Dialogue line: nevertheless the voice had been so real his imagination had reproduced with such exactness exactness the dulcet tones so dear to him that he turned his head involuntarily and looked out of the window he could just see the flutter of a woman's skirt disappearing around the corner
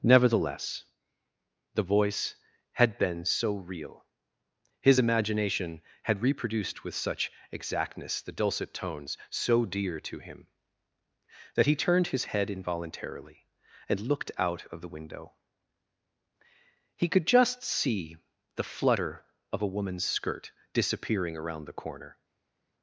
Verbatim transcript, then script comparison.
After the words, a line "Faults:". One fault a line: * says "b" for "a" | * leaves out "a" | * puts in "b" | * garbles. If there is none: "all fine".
nevertheless the voice had been so real his imagination had reproduced with such exactness the dulcet tones so dear to him that he turned his head involuntarily and looked out of the window he could just see the flutter of a woman's skirt disappearing around the corner
Faults:
* leaves out "exactness"